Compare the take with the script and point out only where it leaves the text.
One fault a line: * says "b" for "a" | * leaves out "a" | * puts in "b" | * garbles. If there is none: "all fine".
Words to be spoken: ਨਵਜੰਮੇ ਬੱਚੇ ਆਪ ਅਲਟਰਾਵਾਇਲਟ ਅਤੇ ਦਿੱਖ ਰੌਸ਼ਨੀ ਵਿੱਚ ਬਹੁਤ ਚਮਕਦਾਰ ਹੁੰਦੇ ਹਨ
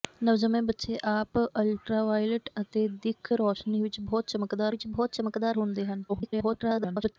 * puts in "ਵਿੱਚ ਬਹੁਤ ਚਮਕਦਾਰ"
* garbles